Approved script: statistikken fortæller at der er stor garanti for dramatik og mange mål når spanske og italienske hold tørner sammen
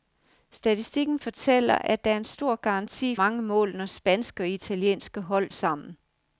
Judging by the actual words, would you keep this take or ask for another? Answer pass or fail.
fail